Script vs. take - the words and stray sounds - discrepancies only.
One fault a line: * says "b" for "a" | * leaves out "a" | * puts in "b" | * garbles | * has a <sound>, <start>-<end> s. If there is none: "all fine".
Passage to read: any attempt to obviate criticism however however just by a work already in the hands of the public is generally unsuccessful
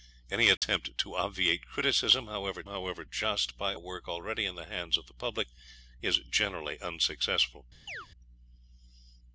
* has a dropout, 0.6-0.6 s
* has a chirp, 7.9-8.1 s